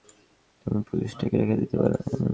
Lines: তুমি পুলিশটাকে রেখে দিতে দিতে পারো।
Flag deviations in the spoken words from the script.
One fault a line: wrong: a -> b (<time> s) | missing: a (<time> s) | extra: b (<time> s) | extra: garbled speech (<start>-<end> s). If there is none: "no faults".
missing: দিতে (1.8 s)